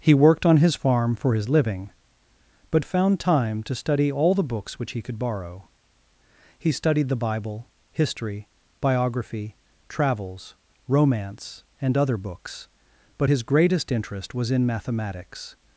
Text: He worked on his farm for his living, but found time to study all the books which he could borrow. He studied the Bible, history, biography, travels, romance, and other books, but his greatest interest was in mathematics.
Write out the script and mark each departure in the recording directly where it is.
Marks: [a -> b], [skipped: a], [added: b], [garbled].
He worked on his farm for his living, but found time to study all the books which he could borrow. He studied the Bible, history, biography, travels, romance, and other books, but his greatest interest was in mathematics.